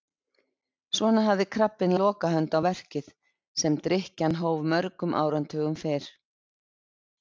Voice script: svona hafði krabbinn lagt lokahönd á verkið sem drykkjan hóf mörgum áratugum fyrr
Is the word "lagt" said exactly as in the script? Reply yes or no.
no